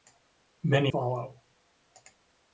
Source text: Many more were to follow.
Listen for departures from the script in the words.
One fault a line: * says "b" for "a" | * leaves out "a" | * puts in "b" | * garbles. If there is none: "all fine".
* leaves out "more were to"